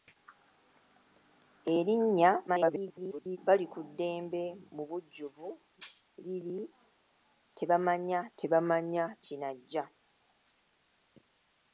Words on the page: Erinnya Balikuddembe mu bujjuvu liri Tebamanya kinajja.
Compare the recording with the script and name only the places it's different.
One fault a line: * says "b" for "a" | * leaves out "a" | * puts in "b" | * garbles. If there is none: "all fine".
* garbles
* puts in "Tebamanya"